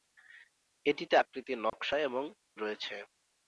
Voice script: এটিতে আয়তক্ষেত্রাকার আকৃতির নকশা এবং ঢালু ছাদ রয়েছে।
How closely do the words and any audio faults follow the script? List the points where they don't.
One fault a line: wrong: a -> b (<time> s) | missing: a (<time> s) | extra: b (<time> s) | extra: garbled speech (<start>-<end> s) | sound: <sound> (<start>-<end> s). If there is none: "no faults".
missing: আয়তক্ষেত্রাকার (1.1 s)
sound: dropout (1.7-1.7 s)
missing: ঢালু ছাদ (2.2 s)